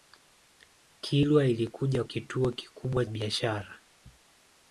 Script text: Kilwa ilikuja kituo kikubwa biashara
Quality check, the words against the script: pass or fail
pass